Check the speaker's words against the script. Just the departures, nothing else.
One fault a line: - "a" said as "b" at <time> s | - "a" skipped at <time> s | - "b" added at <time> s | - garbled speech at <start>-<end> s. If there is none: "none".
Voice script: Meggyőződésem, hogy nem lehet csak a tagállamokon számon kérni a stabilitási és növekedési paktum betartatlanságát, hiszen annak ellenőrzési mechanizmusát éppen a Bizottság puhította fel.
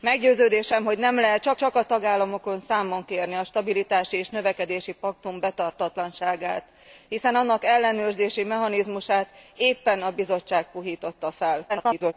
- "csak" added at 1.6 s
- garbled speech at 11.7-12.1 s